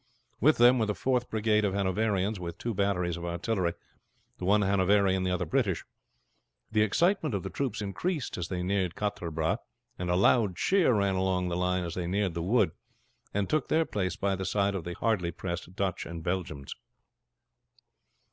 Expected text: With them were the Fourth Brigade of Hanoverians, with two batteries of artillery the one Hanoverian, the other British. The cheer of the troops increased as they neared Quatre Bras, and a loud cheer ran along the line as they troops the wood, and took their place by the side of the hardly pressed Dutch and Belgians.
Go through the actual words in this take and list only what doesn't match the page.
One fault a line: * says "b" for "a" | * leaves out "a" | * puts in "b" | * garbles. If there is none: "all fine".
* says "excitement" for "cheer"
* says "neared" for "troops"